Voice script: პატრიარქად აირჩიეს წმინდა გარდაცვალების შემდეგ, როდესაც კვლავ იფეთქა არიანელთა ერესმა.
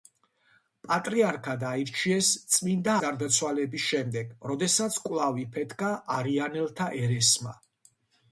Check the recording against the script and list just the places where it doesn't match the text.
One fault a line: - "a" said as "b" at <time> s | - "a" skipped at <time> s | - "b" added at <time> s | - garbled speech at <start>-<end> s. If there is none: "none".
none